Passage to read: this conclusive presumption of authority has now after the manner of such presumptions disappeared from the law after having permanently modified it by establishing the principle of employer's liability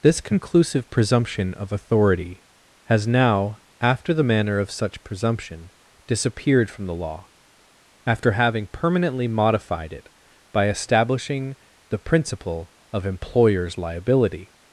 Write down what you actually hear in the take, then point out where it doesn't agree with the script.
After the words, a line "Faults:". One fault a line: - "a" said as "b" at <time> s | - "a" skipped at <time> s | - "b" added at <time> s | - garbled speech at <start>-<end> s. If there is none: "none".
this conclusive presumption of authority has now after the manner of such presumption disappeared from the law after having permanently modified it by establishing the principle of employer's liability
Faults:
- "presumptions" said as "presumption" at 5.0 s